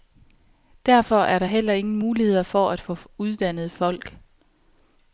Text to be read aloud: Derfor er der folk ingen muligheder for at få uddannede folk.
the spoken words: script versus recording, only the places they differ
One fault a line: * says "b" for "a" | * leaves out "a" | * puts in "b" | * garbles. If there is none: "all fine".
* says "heller" for "folk"